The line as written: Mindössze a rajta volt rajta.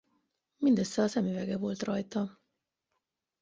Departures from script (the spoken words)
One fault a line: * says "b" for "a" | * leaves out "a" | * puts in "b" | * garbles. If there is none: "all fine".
* says "szemüvege" for "rajta"